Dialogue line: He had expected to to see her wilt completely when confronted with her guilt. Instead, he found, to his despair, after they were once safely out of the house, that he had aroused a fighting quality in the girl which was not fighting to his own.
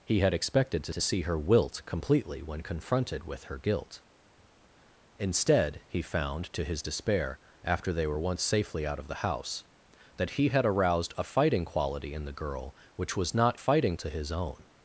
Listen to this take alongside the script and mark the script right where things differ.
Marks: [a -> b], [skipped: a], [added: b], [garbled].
He had expected to to see her wilt completely when confronted with her guilt. Instead, he found, to his despair, after they were once safely out of the house, that he had aroused a fighting quality in the girl which was not fighting to his own.